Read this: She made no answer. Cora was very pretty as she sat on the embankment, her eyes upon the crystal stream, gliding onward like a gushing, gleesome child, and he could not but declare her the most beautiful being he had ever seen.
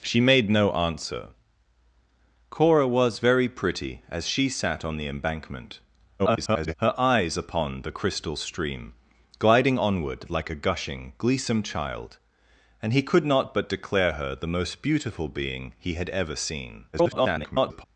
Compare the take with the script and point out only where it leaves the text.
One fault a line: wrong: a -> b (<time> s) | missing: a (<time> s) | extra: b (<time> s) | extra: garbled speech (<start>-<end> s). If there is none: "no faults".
extra: garbled speech (6.2-6.7 s)
extra: garbled speech (16.9-17.8 s)